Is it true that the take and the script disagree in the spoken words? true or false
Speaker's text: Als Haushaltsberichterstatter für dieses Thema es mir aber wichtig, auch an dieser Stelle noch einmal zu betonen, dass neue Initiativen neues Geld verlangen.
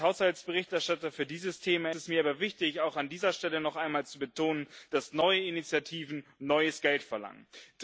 false